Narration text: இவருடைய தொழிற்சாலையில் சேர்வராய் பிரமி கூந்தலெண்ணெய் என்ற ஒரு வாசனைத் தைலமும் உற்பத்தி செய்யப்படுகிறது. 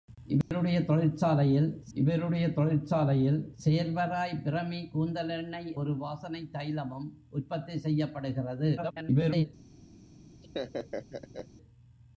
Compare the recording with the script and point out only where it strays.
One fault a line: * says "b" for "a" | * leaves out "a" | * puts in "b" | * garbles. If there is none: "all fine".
* puts in "இவருடைய தொழிற்சாலையில்"
* leaves out "என்ற"
* garbles